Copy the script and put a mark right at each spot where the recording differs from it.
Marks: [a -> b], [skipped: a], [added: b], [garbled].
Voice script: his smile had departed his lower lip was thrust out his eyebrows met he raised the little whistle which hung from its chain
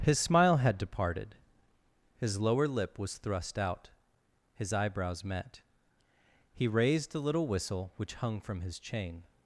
his smile had departed his lower lip was thrust out his eyebrows met he raised the little whistle which hung from [its -> his] chain